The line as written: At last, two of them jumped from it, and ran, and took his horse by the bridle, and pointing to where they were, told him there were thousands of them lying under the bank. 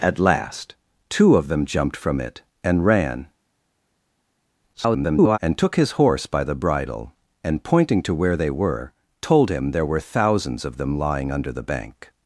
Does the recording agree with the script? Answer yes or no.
no